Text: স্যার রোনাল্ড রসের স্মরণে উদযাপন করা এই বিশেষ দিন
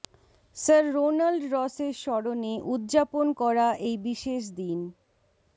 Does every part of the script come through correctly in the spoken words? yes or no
yes